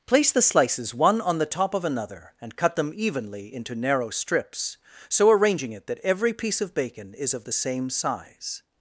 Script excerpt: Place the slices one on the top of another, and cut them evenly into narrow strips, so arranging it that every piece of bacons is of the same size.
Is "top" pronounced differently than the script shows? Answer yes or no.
no